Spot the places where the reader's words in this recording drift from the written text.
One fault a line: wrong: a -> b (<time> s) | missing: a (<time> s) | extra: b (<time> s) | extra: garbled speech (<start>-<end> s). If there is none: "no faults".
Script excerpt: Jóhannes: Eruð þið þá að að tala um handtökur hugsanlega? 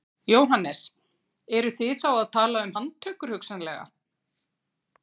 missing: að (2.3 s)